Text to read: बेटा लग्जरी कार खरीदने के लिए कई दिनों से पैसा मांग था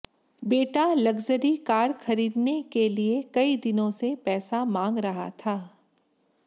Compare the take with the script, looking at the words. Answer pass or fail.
fail